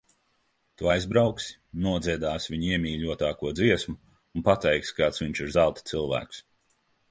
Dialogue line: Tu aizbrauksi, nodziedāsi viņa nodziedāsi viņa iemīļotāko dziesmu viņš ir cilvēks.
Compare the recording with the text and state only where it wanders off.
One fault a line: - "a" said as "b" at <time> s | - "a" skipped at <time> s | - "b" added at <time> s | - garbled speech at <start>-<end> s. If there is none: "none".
- "nodziedāsi viņa iemīļotāko dziesmu" said as "iemīļotāko dziesmu un pateiksi kāds" at 2.8 s
- "zelta" added at 5.6 s